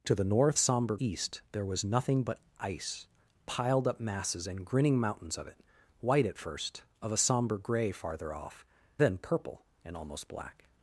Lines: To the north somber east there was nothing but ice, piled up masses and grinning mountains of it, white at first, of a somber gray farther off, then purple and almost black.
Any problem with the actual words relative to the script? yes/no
no